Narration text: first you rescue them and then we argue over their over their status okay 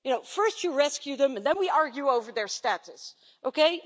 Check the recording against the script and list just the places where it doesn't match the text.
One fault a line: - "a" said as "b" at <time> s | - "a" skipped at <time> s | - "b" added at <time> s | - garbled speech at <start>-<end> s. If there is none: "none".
- "over their" skipped at 2.5 s